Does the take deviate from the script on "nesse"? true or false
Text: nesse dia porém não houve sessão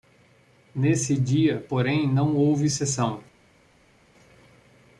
false